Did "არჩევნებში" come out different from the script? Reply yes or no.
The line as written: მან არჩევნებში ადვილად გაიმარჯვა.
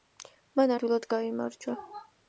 yes